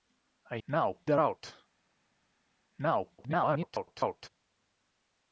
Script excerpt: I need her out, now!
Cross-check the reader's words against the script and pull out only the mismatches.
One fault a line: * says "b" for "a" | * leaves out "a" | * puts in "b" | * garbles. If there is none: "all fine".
* says "now" for "need"
* garbles